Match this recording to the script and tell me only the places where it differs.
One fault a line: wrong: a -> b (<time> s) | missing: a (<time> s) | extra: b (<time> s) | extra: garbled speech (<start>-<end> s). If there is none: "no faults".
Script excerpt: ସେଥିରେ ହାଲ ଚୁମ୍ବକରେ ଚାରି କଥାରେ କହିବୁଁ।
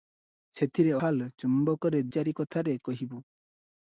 no faults